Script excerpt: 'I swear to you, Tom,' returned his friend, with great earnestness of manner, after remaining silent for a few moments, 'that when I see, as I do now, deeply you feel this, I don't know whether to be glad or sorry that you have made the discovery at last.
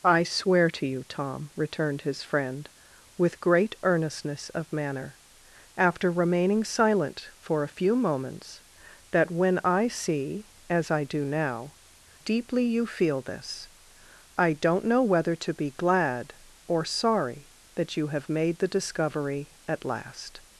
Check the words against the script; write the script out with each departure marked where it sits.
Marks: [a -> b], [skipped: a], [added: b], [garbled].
'I swear to you, Tom,' returned his friend, with great earnestness of manner, after remaining silent for a few moments, 'that when I see, as I do now, deeply you feel this, I don't know whether to be glad or sorry that you have made the discovery at last.